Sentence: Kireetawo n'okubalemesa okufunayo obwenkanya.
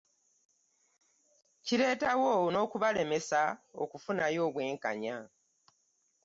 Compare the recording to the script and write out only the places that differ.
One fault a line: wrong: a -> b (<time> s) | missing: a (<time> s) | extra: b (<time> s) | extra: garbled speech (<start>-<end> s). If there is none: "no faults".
no faults